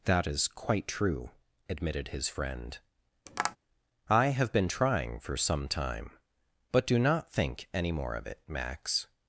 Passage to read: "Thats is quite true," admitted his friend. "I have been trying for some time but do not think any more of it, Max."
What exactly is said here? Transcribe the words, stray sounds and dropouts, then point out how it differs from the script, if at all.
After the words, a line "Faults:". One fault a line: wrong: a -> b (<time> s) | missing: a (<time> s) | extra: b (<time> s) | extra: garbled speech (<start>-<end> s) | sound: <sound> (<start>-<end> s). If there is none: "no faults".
"That is quite true," admitted his friend. "I have been trying for some time but do not think any more of it, Max."
Faults:
wrong: Thats -> That (0.1 s)
sound: tap (3.3-3.6 s)